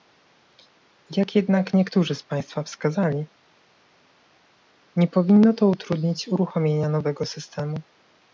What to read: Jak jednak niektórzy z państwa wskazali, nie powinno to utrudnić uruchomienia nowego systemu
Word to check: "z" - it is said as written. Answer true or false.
true